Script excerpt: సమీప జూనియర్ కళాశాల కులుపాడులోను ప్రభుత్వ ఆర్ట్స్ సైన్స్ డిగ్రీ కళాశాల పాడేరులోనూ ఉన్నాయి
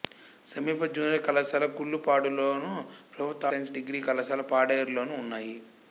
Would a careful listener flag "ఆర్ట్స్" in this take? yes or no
yes